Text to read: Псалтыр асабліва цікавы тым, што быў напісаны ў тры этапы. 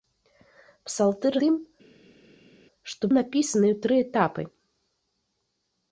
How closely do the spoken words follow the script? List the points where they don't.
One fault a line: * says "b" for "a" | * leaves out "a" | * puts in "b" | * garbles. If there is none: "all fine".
* leaves out "асабліва цікавы"
* leaves out "быў"